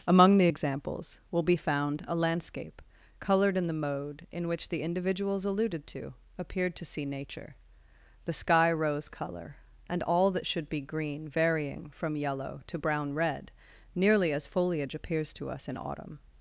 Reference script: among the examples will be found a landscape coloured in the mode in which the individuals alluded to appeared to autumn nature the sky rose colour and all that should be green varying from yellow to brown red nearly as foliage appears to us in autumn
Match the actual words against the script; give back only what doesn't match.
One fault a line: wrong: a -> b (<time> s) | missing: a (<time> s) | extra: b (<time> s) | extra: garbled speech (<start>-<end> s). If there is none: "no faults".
wrong: autumn -> see (6.8 s)